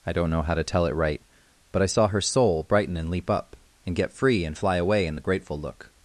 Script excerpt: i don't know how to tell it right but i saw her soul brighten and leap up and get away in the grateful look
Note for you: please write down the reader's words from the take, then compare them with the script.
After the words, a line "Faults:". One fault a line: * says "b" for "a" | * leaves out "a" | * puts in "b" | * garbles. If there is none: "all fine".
i don't know how to tell it right but i saw her soul brighten and leap up and get free and fly away in the grateful look
Faults:
* puts in "free and fly"